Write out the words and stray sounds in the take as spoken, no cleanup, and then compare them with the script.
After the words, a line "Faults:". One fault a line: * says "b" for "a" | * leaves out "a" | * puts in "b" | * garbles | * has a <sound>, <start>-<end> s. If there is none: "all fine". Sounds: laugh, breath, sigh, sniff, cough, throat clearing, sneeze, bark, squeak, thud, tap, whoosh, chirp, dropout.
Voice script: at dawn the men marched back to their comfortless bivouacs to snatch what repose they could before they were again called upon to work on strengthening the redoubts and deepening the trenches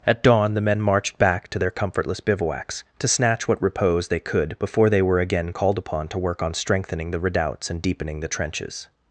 at dawn the men marched back to their comfortless bivouacs to snatch what repose they could before they were again called upon to work on strengthening the redoubts and deepening the trenches
Faults:
all fine